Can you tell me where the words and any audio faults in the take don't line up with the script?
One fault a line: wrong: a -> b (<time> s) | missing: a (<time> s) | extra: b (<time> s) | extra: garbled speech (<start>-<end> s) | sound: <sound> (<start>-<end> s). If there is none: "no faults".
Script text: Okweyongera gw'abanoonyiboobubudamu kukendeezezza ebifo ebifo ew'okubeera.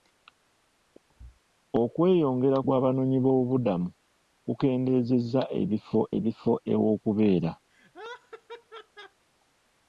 sound: thud (1.1-1.4 s)
sound: laugh (7.7-9.2 s)